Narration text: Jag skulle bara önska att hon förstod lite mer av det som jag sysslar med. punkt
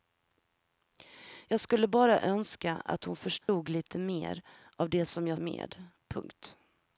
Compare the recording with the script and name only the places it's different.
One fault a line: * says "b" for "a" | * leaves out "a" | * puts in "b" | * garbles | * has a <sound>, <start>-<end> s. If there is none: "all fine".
* has a dropout, 3.4-3.5 s
* leaves out "sysslar"